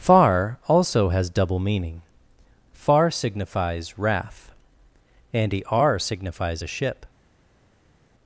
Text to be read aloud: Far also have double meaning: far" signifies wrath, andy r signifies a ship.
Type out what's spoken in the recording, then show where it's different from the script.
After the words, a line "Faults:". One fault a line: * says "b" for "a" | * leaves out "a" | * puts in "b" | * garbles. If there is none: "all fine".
Far also has double meaning: far" signifies wrath, andy r signifies a ship.
Faults:
* says "has" for "have"